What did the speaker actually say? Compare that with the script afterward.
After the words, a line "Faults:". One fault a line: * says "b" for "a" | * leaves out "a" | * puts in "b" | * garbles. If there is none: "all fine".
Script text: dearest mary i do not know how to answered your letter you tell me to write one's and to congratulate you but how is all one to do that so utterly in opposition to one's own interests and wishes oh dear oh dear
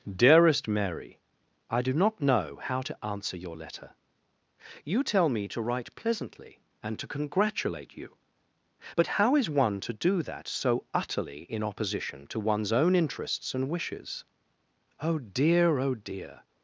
dearest mary i do not know how to answer your letter you tell me to write pleasantly and to congratulate you but how is one to do that so utterly in opposition to one's own interests and wishes oh dear oh dear
Faults:
* says "answer" for "answered"
* says "pleasantly" for "one's"
* leaves out "all"